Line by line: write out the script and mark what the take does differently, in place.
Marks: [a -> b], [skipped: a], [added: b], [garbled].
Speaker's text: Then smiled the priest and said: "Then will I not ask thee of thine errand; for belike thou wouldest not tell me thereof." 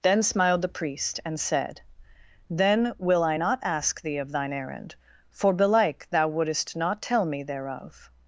Then smiled the priest and said: "Then will I not ask thee of thine errand; for belike thou wouldest not tell me thereof."